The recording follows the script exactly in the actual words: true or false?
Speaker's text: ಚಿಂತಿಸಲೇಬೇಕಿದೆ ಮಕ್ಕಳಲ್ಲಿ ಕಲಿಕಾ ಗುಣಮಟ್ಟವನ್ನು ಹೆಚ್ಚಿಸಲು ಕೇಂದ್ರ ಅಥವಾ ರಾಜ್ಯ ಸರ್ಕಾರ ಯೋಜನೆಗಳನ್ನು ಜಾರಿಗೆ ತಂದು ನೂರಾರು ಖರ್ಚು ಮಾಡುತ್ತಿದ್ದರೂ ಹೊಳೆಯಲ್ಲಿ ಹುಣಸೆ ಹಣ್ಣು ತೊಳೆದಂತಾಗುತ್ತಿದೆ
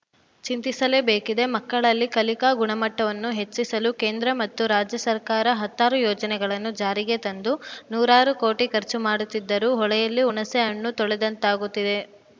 false